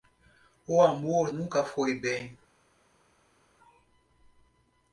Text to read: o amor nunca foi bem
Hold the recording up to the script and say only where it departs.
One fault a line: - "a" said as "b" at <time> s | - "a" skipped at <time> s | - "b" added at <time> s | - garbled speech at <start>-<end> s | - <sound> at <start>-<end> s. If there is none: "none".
none